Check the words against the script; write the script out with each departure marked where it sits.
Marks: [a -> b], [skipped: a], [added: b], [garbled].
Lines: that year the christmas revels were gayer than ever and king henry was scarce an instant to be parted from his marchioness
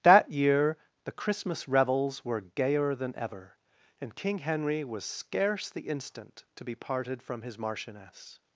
that year the christmas revels were gayer than ever and king henry was scarce [an -> the] instant to be parted from his marchioness